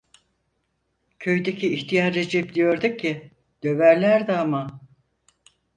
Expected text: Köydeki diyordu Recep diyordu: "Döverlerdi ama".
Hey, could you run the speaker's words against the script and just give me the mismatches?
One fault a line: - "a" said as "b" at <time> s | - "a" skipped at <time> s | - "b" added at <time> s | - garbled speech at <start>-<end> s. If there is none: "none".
- "diyordu" said as "ihtiyar" at 1.7 s
- "ki" added at 3.0 s